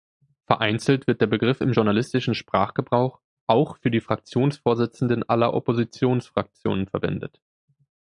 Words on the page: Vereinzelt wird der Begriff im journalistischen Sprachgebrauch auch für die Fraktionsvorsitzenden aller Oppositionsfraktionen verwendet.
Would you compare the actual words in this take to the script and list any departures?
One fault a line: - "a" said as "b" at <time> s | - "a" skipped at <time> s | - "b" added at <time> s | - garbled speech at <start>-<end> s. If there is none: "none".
none